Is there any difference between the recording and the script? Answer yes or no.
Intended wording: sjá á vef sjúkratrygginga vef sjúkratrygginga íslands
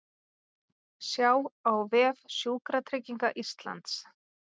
yes